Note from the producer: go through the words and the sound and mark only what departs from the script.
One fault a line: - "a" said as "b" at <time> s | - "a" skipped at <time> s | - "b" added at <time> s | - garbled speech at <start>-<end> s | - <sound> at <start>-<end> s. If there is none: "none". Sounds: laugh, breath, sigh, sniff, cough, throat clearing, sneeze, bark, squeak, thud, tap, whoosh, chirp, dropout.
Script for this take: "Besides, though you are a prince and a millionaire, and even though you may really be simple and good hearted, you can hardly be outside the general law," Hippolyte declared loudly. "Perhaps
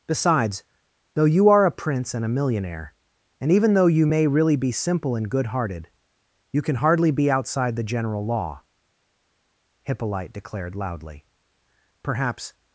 none